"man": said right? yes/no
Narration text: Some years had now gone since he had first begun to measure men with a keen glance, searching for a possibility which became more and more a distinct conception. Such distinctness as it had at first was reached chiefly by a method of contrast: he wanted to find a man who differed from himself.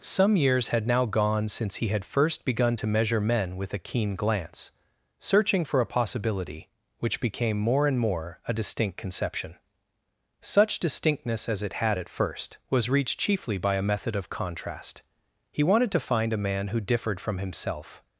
yes